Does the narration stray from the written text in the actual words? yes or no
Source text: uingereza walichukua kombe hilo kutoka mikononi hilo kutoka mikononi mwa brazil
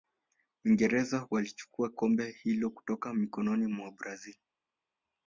yes